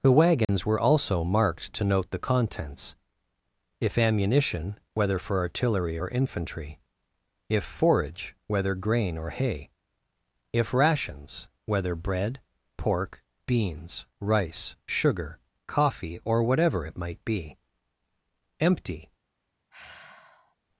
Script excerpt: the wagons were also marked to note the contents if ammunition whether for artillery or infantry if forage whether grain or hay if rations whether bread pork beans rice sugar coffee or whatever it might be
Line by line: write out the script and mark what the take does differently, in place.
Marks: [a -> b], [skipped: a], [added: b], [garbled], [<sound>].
the wagons [dropout] were also marked to note the contents if ammunition whether for artillery or infantry if forage whether grain or hay if rations whether bread pork beans rice sugar coffee or whatever it might be [added: empty] [sigh]